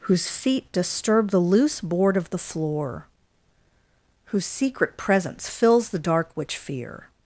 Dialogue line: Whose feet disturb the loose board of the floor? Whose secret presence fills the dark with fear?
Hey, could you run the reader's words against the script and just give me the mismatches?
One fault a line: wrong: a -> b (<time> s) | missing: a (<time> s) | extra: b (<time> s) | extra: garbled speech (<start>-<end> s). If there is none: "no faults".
wrong: with -> which (6.3 s)